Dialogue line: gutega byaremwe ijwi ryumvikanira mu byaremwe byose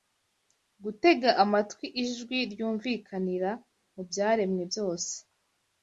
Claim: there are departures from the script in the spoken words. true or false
true